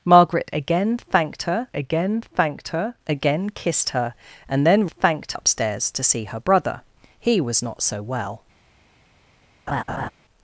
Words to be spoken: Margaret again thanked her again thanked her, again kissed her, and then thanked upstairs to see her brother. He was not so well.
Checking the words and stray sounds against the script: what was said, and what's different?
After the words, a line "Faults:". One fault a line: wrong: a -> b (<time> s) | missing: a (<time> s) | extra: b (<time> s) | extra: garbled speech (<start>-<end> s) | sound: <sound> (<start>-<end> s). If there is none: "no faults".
Margaret again thanked her again thanked her, again kissed her, and then thanked upstairs to see her brother. He was not so well.
Faults:
sound: laugh (9.7-10.1 s)